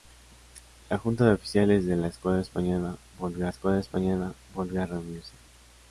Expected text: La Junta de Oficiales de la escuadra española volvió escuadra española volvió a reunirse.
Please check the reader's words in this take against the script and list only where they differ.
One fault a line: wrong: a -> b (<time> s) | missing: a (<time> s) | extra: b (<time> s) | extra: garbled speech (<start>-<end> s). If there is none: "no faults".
no faults